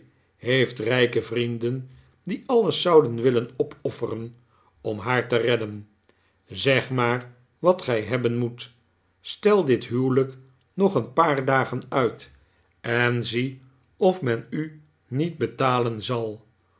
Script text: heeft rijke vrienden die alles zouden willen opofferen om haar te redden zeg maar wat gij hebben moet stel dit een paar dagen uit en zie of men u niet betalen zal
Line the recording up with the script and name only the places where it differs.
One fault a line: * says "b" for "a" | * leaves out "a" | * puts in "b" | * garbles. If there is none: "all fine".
* puts in "huwelijk nog"